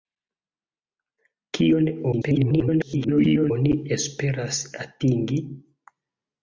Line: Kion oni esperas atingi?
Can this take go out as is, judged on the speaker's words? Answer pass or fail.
fail